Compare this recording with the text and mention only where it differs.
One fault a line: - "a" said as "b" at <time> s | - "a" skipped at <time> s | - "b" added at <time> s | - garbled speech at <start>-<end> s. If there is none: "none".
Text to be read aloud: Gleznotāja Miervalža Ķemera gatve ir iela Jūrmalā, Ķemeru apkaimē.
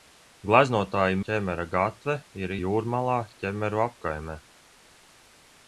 - "Miervalža" skipped at 1.2 s
- "iela" skipped at 2.5 s